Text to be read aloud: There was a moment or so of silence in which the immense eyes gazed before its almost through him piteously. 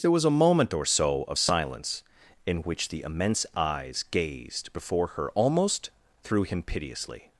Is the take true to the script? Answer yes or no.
no